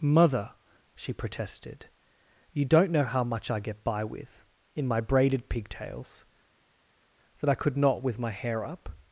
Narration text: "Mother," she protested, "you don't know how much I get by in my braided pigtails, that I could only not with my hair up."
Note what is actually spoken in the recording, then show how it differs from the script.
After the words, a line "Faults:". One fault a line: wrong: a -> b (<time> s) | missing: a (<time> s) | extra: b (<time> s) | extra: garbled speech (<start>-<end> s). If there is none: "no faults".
"Mother," she protested, "you don't know how much I get by with, in my braided pigtails, that I could not with my hair up."
Faults:
extra: with (4.0 s)
missing: only (7.8 s)